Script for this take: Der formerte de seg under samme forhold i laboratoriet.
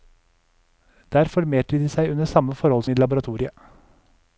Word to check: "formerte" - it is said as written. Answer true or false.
true